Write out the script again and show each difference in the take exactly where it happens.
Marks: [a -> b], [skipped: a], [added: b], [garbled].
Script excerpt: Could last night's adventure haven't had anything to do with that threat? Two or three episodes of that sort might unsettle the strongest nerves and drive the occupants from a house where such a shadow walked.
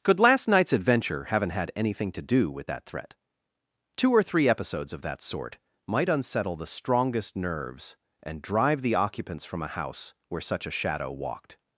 Could last night's adventure haven't had anything to do with that threat? Two or three episodes of that sort might unsettle the strongest nerves and drive the occupants from a house where such a shadow walked.